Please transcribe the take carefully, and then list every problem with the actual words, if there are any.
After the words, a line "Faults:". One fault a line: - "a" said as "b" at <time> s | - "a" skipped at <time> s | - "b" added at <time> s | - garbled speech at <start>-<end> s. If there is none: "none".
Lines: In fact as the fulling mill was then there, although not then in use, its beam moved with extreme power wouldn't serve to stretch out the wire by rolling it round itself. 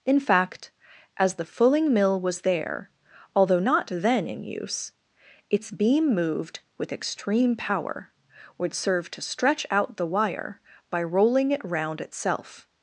In fact as the fulling mill was there, although not then in use, its beam moved with extreme power would serve to stretch out the wire by rolling it round itself.
Faults:
- "then" skipped at 2.4 s
- "wouldn't" said as "would" at 8.6 s